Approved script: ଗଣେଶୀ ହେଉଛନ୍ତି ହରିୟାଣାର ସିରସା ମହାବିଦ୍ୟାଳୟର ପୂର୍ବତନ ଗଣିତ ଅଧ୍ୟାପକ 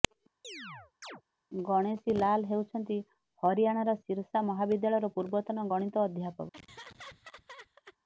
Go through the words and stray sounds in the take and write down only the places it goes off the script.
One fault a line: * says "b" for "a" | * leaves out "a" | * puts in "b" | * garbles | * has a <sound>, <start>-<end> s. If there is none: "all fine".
* has a chirp, 0.4-1.2 s
* puts in "ଲାଲ୍"
* has a laugh, 6.5-8.0 s